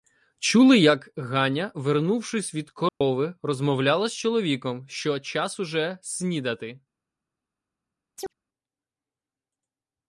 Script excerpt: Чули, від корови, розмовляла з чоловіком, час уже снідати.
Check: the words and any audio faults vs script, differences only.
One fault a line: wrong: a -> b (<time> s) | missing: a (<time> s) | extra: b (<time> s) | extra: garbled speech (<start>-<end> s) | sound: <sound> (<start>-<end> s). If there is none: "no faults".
extra: як Ганя вернувшись (0.8 s)
sound: dropout (2.9-3.0 s)
extra: що (4.9 s)
sound: chirp (8.2-8.3 s)